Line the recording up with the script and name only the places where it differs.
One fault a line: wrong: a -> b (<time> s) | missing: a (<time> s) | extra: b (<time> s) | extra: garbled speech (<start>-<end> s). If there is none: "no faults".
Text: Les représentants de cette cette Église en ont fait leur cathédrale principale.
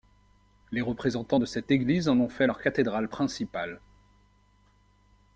missing: cette (1.7 s)